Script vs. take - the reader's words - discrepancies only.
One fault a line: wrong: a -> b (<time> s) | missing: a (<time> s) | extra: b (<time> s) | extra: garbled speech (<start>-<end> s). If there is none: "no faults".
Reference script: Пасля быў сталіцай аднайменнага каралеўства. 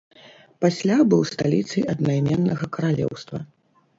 no faults